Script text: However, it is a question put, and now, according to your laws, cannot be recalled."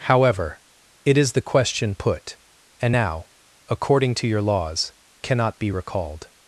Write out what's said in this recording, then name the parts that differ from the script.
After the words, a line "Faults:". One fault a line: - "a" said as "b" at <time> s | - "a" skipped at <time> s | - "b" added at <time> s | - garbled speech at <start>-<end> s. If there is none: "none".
However, it is the question put, and now, according to your laws, cannot be recalled."
Faults:
- "a" said as "the" at 1.3 s